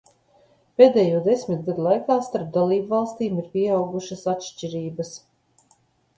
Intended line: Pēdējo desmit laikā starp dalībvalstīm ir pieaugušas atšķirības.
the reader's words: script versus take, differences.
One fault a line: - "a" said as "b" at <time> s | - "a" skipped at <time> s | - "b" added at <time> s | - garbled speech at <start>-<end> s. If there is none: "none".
- "gadu" added at 1.7 s